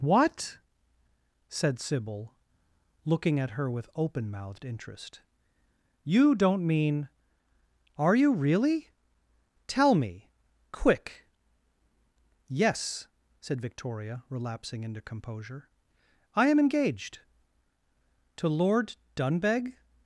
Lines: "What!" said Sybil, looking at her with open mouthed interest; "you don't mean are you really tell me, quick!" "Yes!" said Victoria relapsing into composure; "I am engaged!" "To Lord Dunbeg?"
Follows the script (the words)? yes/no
yes